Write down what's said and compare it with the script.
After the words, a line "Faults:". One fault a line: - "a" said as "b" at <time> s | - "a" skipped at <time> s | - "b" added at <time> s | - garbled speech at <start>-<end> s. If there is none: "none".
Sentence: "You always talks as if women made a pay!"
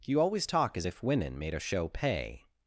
"You always talk as if women made a show pay!"
Faults:
- "talks" said as "talk" at 0.5 s
- "show" added at 1.6 s